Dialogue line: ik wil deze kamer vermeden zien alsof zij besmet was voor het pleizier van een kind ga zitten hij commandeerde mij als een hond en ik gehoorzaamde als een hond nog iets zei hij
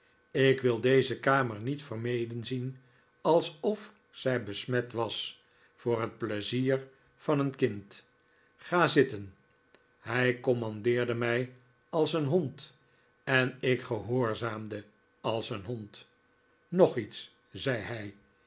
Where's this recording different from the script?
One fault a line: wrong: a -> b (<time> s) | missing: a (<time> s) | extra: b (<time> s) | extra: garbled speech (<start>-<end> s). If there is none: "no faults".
extra: niet (1.6 s)